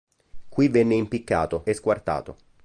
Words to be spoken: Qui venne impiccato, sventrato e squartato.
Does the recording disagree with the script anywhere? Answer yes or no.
yes